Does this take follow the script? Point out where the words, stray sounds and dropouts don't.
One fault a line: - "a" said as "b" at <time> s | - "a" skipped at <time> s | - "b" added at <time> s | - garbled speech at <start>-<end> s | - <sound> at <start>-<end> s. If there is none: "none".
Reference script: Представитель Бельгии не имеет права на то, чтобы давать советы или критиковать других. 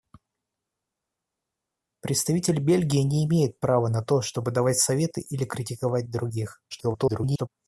- garbled speech at 6.7-7.5 s